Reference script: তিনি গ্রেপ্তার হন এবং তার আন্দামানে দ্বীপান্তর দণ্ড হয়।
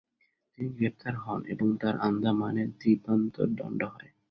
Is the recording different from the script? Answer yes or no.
no